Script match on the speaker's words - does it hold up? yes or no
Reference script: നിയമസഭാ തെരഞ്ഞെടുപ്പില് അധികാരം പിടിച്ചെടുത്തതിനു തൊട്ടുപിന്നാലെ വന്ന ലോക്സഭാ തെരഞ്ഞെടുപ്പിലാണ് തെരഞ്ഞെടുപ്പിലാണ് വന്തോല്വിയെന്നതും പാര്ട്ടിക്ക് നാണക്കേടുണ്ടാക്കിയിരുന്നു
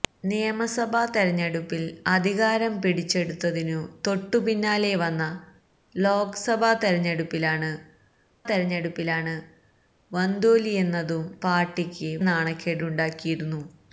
yes